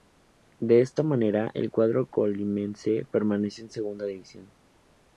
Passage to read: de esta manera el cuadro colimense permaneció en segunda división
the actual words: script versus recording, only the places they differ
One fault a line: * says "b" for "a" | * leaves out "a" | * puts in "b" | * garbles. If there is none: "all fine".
all fine